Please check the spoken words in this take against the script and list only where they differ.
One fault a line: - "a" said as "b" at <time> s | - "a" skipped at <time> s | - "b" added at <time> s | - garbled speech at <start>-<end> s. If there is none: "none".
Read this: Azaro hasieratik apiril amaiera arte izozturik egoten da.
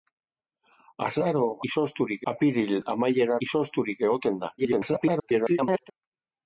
- "hasieratik" said as "izozturik" at 1.7 s
- "arte" skipped at 3.4 s
- garbled speech at 4.6-5.9 s